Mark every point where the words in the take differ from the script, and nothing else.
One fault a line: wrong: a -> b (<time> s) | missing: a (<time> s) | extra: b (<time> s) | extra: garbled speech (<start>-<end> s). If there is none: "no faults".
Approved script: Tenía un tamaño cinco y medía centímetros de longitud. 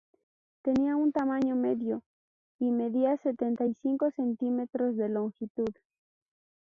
wrong: cinco -> medio (1.6 s)
extra: setenta y cinco (3.2 s)